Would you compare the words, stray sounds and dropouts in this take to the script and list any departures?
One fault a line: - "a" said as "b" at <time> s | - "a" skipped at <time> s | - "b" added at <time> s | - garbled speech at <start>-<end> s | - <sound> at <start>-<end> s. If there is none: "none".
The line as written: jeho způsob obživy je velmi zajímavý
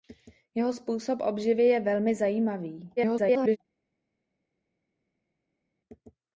- garbled speech at 3.0-3.6 s